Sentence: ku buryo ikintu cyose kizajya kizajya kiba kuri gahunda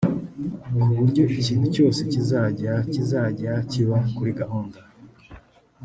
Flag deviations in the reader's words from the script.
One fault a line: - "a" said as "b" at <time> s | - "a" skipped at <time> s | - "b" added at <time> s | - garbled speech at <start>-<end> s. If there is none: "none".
none